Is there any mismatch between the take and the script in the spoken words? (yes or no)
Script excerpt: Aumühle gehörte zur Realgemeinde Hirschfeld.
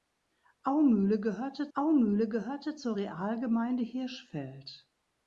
yes